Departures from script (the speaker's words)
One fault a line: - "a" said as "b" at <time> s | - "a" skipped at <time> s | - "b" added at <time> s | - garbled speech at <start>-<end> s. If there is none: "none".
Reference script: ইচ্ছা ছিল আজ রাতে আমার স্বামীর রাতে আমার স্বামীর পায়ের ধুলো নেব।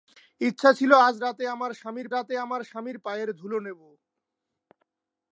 none